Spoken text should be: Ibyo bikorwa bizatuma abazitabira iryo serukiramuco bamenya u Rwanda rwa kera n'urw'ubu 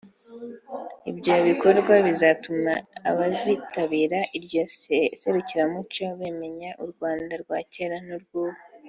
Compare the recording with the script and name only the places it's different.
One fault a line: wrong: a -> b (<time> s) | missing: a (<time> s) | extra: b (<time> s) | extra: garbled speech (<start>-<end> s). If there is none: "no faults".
no faults